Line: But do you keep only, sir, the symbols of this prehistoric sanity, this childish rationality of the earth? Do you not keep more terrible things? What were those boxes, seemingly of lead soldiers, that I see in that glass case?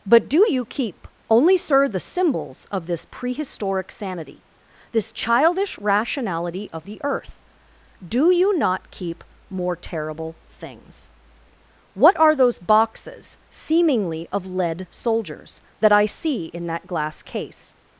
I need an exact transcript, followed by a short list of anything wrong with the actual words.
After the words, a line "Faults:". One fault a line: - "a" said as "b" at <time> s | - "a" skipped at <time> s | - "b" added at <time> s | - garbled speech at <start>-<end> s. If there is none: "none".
But do you keep only, sir, the symbols of this prehistoric sanity, this childish rationality of the earth? Do you not keep more terrible things? What are those boxes, seemingly of lead soldiers, that I see in that glass case?
Faults:
- "were" said as "are" at 12.2 s